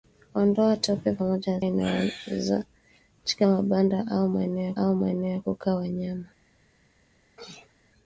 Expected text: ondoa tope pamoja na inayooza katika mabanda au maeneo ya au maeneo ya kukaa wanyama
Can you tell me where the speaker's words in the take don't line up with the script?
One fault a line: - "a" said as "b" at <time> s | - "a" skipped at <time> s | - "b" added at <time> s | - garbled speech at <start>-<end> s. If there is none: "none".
none